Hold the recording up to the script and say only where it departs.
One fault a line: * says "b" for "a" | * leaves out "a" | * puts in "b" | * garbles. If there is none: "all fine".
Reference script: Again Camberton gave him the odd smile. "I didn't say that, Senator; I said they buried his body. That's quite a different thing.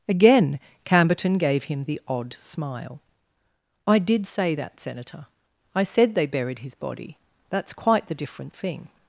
* says "did" for "didn't"
* says "the" for "a"